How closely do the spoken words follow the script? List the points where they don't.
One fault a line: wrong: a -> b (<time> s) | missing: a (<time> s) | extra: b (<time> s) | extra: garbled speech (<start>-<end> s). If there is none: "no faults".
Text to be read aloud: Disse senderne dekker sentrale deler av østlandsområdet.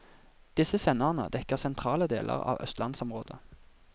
no faults